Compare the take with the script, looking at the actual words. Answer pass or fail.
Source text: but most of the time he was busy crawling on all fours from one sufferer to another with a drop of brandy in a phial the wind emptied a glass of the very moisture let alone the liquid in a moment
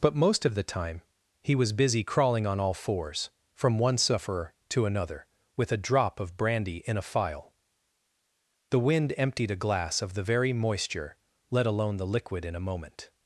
pass